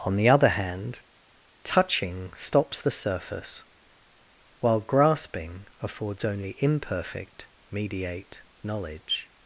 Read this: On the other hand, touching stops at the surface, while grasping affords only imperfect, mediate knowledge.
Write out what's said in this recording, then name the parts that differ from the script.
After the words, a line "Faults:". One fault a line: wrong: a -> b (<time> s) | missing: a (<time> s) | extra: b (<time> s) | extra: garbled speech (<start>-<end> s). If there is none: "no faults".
On the other hand, touching stops the surface, while grasping affords only imperfect, mediate knowledge.
Faults:
missing: at (2.8 s)